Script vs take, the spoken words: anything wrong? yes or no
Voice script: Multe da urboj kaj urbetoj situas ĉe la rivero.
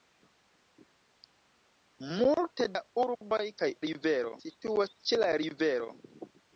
yes